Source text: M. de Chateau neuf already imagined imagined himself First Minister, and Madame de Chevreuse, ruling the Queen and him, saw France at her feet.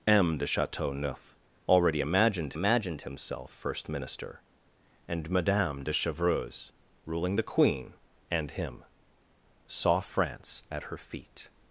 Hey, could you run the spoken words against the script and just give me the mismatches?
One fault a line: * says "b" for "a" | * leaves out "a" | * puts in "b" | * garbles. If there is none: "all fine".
all fine